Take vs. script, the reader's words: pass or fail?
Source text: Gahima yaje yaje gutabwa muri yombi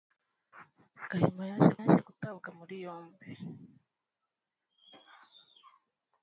pass